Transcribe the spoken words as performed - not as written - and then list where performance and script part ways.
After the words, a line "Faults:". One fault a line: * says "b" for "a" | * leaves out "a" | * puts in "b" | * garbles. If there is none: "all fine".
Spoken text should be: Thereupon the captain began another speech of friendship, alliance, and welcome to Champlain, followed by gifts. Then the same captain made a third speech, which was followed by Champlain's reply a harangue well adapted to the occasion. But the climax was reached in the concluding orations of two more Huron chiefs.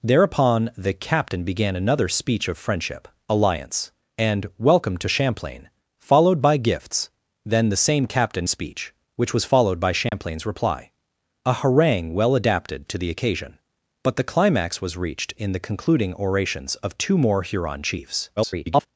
Thereupon the captain began another speech of friendship, alliance, and welcome to Champlain, followed by gifts. Then the same captain speech, which was followed by Champlain's reply a harangue well adapted to the occasion. But the climax was reached in the concluding orations of two more Huron chiefs. [garbled]
Faults:
* leaves out "made a third"
* garbles